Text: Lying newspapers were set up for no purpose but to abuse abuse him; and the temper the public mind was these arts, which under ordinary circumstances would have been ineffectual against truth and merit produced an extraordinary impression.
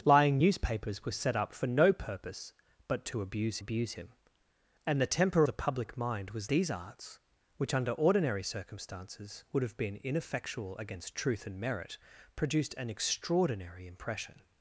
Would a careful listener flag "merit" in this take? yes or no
no